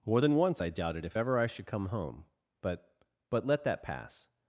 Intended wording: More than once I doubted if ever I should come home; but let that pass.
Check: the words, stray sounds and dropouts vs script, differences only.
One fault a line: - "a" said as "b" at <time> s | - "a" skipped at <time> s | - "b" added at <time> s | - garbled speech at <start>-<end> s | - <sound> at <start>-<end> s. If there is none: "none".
- "but" added at 3.3 s